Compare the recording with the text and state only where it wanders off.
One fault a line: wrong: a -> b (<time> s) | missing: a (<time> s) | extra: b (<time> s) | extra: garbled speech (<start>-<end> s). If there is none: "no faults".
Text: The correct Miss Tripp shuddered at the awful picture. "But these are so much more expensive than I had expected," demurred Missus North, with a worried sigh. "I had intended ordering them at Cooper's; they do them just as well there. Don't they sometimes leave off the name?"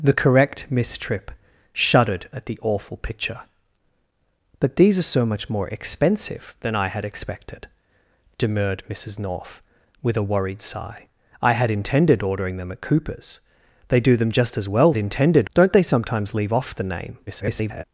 wrong: there -> intended (15.0 s)
extra: garbled speech (17.3-17.8 s)